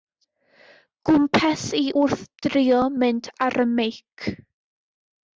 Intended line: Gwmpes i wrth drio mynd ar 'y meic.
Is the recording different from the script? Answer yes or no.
no